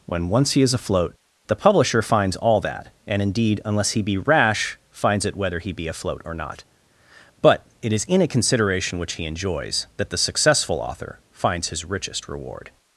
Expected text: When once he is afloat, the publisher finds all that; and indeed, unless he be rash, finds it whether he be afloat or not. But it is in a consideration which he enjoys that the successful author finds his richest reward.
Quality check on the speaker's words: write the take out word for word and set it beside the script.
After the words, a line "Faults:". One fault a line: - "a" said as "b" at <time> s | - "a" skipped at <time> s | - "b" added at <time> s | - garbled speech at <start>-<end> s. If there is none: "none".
When once he is afloat, the publisher finds all that; and indeed, unless he be rash, finds it whether he be afloat or not. But it is in a consideration which he enjoys that the successful author finds his richest reward.
Faults:
none